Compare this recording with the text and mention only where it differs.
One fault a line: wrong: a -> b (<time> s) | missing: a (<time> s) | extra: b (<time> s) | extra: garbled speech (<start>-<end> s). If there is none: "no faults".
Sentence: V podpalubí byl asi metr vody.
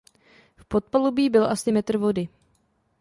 no faults